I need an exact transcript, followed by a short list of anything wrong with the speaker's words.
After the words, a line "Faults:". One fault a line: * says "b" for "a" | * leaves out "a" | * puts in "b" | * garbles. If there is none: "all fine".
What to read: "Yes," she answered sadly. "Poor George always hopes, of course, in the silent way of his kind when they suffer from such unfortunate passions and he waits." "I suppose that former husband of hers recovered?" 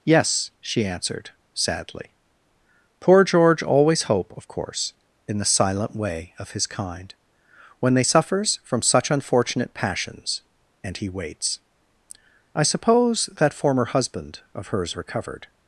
"Yes," she answered sadly. "Poor George always hope, of course, in the silent way of his kind when they suffers from such unfortunate passions and he waits." "I suppose that former husband of hers recovered?"
Faults:
* says "hope" for "hopes"
* says "suffers" for "suffer"